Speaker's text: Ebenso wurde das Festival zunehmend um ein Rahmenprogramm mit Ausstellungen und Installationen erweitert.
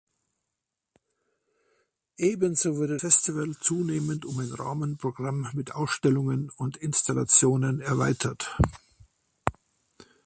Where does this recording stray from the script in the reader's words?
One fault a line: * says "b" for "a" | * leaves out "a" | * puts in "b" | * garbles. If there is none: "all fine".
* leaves out "das"